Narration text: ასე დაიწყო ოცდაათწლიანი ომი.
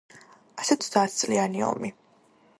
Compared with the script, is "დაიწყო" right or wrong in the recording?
wrong